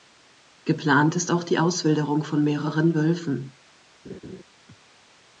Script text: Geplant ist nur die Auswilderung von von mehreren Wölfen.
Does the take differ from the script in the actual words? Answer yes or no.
yes